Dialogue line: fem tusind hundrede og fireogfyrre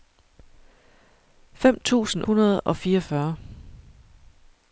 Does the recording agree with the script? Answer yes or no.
yes